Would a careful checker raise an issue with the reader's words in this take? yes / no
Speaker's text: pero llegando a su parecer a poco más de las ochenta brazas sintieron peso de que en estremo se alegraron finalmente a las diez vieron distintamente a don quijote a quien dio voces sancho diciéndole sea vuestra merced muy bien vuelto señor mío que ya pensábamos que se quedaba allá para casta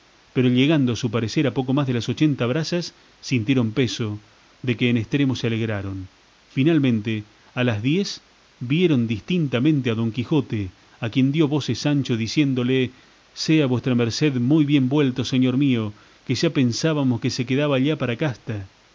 no